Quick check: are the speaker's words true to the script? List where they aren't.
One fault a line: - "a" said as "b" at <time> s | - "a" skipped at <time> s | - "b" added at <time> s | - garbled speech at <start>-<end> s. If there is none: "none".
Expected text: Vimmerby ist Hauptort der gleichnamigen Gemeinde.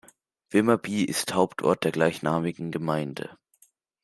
none